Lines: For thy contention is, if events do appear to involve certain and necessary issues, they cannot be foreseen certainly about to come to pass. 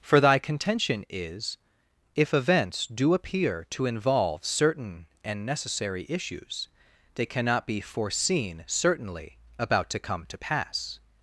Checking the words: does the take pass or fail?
pass